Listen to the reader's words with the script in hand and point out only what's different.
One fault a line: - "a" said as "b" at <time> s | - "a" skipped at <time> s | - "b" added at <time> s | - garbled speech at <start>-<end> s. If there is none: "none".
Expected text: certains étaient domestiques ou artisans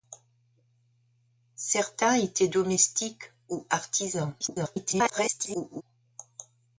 - garbled speech at 4.4-5.8 s